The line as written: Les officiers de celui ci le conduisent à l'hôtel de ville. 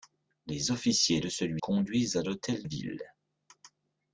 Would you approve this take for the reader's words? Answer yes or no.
no